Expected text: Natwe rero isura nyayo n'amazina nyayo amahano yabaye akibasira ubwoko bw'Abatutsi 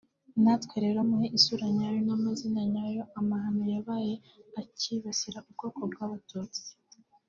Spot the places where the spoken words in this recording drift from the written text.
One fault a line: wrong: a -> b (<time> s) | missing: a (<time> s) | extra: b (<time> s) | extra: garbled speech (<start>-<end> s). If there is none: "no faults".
extra: muhe (1.1 s)